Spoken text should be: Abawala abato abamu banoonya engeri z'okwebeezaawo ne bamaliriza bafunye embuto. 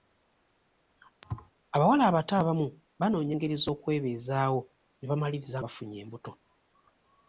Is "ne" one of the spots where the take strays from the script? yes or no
no